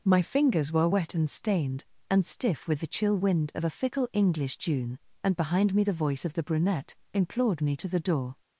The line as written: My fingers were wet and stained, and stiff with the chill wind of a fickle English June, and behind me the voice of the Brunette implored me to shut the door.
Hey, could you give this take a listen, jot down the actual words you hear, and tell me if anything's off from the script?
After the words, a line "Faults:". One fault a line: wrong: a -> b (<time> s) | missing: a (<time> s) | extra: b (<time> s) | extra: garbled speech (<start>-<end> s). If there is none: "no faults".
My fingers were wet and stained, and stiff with the chill wind of a fickle English June, and behind me the voice of the Brunette implored me to the door.
Faults:
missing: shut (7.9 s)